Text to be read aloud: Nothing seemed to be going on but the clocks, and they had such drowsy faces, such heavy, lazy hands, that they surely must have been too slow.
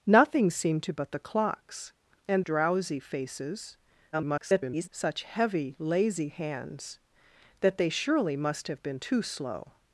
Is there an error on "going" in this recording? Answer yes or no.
yes